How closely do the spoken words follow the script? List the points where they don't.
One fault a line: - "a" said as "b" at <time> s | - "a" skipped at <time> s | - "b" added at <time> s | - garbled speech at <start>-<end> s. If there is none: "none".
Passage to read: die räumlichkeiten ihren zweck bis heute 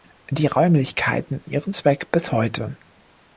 none